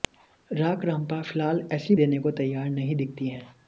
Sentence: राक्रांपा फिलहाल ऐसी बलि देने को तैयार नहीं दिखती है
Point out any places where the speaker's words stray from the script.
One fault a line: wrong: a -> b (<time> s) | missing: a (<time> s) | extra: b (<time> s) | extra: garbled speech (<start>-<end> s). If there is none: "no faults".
missing: बलि (1.9 s)